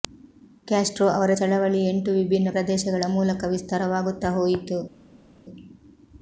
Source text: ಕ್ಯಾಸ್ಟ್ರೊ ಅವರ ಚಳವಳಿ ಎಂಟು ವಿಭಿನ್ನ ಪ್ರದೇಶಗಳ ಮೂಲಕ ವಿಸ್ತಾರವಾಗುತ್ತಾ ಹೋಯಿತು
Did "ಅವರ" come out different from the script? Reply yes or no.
no